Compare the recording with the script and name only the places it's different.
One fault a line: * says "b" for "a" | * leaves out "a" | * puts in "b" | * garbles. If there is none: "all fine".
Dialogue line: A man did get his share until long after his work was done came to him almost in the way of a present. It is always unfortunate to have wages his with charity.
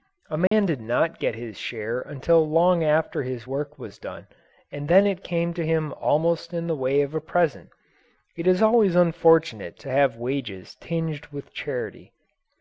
* puts in "not"
* puts in "and then it"
* says "tinged" for "his"